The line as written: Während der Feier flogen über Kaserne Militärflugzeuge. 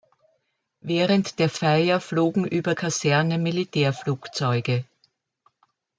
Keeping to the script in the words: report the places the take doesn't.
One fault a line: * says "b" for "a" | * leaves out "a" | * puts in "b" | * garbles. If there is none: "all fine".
all fine